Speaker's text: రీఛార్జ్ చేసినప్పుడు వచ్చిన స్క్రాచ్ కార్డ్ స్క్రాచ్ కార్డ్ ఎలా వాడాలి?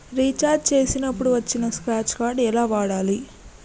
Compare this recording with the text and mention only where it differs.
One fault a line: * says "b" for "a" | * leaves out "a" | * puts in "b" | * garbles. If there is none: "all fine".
* leaves out "స్క్రాచ్ కార్డ్"